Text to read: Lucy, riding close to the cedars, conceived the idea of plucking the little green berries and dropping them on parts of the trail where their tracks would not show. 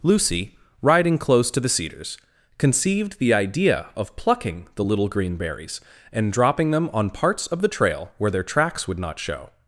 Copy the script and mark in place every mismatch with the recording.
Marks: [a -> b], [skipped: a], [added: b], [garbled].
Lucy, riding close to the cedars, conceived the idea of plucking the little green berries and dropping them on parts of the trail where their tracks would not show.